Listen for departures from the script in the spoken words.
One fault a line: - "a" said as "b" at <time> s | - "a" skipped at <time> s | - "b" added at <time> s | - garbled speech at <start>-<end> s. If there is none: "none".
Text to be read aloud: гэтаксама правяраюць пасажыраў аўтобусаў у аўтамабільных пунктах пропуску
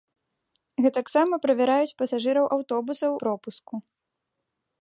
- "у аўтамабільных пунктах" skipped at 3.1 s